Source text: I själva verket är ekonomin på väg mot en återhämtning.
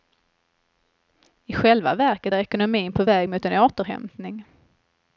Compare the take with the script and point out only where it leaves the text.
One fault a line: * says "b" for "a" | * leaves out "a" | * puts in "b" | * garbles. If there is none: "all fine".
all fine